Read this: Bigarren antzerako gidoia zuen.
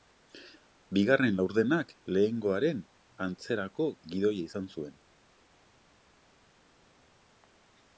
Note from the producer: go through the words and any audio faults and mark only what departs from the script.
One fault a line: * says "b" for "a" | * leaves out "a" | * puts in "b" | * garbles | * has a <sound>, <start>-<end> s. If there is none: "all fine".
* puts in "laurdenak lehenengoaren"
* puts in "izan"